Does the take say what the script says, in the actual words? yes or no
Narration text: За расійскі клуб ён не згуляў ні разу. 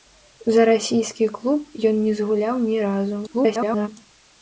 no